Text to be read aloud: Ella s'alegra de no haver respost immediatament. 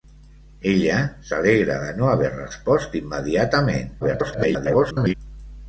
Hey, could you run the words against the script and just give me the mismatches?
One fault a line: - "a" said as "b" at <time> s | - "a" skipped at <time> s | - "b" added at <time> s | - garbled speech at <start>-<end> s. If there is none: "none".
- garbled speech at 4.0-5.1 s